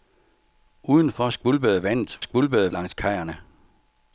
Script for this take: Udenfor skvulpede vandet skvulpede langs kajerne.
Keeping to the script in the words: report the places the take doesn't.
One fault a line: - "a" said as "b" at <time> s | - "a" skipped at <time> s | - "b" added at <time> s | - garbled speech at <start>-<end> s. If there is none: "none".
none